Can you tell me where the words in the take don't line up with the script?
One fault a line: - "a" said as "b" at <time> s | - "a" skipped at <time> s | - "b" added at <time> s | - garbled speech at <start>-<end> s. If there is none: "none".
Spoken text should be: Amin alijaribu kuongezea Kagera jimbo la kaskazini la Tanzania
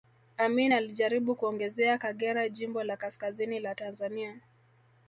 none